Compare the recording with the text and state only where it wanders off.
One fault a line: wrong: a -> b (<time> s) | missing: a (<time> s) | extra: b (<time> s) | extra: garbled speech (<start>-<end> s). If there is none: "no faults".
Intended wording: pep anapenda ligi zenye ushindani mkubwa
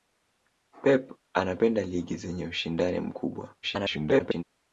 extra: garbled speech (3.6-4.4 s)